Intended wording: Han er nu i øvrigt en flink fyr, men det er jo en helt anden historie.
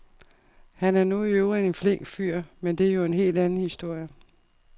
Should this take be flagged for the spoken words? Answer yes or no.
no